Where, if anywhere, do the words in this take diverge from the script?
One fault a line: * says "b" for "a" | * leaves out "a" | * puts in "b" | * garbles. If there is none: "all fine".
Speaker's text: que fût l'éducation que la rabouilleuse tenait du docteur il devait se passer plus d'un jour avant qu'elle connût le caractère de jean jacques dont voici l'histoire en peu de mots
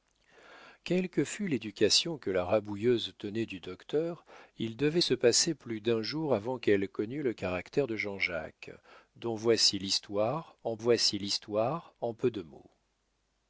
* puts in "voici l'histoire en"